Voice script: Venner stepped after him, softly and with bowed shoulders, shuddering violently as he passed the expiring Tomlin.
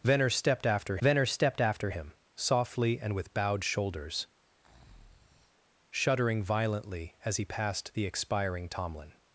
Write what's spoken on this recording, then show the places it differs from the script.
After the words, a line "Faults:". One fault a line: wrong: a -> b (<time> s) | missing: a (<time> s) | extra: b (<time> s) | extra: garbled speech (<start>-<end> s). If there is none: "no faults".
Venner stepped after venner stepped after him, softly and with bowed shoulders, shuddering violently as he passed the expiring Tomlin.
Faults:
extra: venner stepped after (1.0 s)